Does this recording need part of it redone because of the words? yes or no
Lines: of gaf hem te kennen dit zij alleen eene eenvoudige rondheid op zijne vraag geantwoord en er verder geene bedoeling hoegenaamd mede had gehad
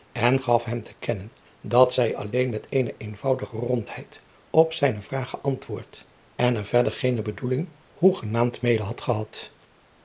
yes